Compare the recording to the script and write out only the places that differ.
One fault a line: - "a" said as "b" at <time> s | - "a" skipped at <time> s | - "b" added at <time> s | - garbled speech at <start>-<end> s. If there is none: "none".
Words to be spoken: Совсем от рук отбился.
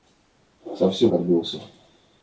- "от рук" skipped at 1.1 s